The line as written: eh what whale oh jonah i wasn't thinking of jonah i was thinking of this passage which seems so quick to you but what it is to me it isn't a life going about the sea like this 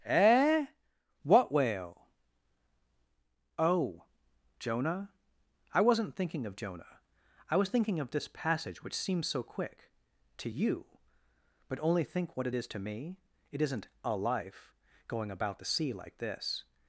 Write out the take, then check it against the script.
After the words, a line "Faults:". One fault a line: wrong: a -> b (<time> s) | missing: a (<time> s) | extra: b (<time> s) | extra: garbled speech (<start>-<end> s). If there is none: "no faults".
eh what whale oh jonah i wasn't thinking of jonah i was thinking of this passage which seems so quick to you but only think what it is to me it isn't a life going about the sea like this
Faults:
extra: only think (11.8 s)